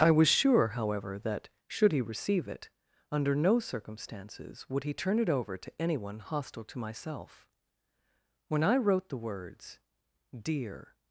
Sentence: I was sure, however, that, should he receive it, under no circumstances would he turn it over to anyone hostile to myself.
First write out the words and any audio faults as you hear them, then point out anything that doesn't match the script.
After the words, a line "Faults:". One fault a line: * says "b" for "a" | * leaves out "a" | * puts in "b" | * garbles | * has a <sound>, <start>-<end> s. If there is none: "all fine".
I was sure, however, that, should he receive it, under no circumstances would he turn it over to anyone hostile to myself. When I wrote the words: "Dear
Faults:
* puts in "When I wrote the words Dear"